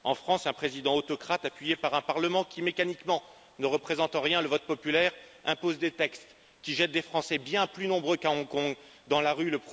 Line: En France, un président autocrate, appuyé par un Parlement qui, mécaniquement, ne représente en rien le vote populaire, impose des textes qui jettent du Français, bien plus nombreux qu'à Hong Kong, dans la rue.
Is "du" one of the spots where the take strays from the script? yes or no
yes